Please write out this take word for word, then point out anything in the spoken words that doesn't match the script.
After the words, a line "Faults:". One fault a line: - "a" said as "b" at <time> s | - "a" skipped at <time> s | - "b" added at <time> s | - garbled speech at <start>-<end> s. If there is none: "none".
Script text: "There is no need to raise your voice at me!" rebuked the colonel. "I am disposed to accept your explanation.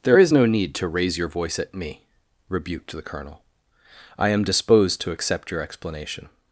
"There is no need to raise your voice at me!" rebuked the colonel. "I am disposed to accept your explanation.
Faults:
none